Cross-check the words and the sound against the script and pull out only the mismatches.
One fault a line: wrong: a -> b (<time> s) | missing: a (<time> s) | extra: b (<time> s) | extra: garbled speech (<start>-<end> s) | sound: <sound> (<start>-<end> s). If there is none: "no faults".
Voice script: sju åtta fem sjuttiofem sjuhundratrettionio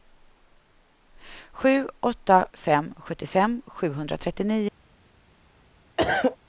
sound: cough (6.0-6.4 s)